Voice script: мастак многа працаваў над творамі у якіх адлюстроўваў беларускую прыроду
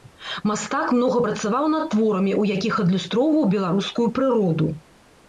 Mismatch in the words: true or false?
false